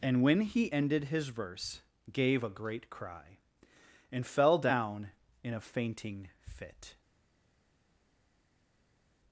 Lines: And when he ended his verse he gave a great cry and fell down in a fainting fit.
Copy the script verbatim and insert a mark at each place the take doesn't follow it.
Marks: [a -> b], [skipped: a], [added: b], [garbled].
And when he ended his verse [skipped: he] gave a great cry and fell down in a fainting fit.